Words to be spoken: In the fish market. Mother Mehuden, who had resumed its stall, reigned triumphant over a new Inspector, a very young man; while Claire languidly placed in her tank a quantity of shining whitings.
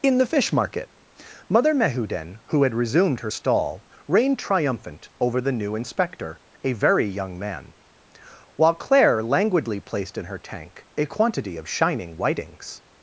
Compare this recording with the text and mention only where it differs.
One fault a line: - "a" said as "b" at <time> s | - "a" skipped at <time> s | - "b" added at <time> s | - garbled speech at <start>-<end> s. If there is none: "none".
- "its" said as "her" at 3.2 s
- "a" said as "the" at 5.4 s